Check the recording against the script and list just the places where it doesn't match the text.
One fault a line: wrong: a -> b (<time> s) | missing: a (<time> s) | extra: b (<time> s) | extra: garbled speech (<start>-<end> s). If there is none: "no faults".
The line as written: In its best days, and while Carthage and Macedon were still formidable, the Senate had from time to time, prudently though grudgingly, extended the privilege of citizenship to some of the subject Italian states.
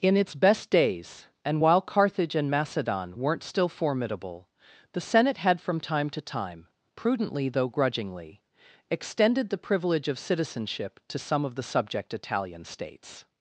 wrong: were -> weren't (3.2 s)